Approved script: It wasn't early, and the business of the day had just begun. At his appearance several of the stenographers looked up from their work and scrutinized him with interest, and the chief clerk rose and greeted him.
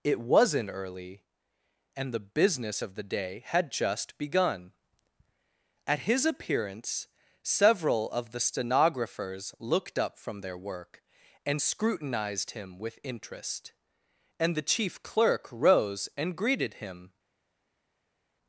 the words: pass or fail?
pass